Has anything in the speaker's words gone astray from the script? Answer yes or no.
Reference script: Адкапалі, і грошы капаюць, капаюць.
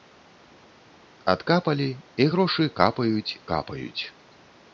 no